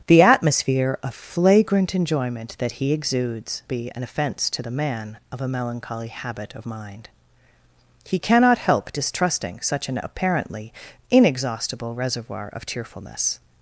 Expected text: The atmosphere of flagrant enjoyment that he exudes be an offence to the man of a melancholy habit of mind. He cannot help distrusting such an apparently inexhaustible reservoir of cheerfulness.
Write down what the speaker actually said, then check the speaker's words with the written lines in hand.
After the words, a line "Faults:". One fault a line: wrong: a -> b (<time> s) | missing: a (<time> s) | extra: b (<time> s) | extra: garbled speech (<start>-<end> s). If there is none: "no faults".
The atmosphere of flagrant enjoyment that he exudes be an offence to the man of a melancholy habit of mind. He cannot help distrusting such an apparently inexhaustible reservoir of cheerfulness.
Faults:
no faults